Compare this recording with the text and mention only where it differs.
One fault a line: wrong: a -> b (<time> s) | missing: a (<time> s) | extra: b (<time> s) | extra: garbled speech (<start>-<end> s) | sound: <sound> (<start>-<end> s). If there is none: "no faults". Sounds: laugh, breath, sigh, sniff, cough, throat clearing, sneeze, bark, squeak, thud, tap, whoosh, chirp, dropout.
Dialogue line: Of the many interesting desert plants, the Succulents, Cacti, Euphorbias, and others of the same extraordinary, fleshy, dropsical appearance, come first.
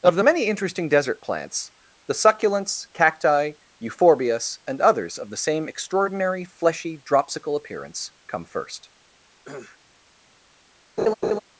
sound: cough (9.4-9.8 s)
sound: laugh (11.0-11.4 s)